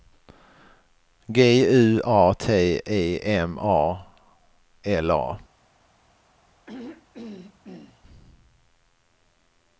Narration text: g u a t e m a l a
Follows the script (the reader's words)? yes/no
yes